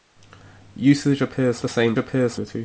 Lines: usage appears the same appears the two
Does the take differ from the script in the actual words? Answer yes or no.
no